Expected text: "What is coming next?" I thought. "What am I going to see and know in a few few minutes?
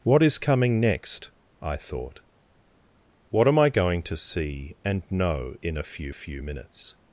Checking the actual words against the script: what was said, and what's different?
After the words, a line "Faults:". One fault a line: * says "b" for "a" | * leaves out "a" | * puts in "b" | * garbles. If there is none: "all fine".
"What is coming next?" I thought. "What am I going to see and know in a few few minutes?
Faults:
all fine